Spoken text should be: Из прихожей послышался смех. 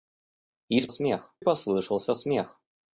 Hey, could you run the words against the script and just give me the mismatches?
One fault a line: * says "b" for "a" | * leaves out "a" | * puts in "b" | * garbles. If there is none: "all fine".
* says "смех" for "прихожей"